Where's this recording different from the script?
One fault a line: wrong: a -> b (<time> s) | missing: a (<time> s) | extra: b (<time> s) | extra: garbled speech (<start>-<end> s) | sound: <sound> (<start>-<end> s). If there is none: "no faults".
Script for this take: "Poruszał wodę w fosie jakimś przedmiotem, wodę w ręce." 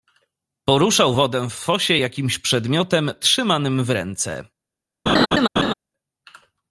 wrong: wodę -> trzymanym (3.2 s)
sound: laugh (5.1-5.7 s)